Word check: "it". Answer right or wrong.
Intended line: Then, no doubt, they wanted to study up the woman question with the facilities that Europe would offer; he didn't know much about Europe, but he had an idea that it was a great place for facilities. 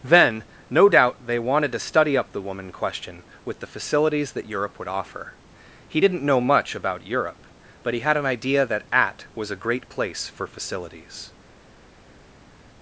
wrong